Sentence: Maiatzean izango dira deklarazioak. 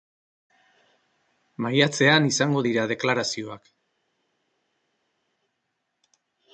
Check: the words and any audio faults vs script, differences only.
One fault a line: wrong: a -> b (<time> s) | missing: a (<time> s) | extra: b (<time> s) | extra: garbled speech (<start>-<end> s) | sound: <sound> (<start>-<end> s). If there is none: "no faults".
no faults